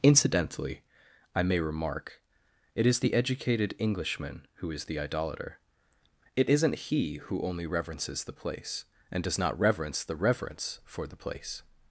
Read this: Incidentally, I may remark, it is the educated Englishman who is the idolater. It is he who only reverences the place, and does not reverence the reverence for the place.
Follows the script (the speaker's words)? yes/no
no